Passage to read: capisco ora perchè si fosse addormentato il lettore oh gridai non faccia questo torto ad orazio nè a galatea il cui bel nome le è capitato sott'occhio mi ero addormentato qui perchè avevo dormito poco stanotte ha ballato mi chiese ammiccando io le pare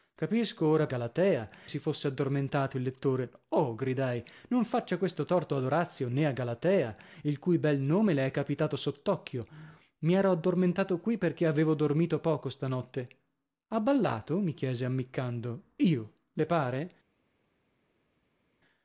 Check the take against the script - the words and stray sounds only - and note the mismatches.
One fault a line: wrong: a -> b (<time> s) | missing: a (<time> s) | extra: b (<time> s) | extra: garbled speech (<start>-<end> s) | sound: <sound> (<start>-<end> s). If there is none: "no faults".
wrong: perchè -> galatea (0.8 s)